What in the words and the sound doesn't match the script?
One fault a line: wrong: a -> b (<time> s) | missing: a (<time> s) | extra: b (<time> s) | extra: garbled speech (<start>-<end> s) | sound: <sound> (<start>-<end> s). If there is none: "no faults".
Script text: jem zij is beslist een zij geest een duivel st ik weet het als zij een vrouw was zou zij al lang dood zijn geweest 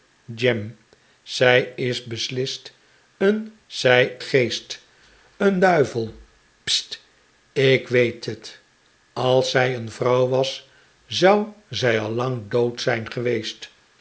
no faults